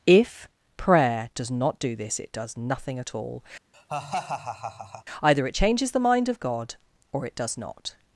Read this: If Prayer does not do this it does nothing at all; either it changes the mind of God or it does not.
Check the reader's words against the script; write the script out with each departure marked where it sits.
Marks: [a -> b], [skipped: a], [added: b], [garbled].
If Prayer does not do this it does nothing at all; either it changes the mind of God or it does not.